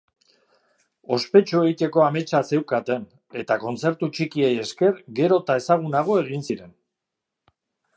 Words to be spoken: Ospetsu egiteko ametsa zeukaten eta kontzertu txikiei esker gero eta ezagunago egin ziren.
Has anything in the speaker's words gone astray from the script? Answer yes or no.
no